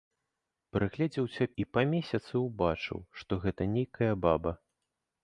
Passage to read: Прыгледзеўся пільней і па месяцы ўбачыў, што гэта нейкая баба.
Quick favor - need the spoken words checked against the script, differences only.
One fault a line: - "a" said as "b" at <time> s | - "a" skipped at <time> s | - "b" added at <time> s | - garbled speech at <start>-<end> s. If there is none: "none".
- "пільней" skipped at 1.5 s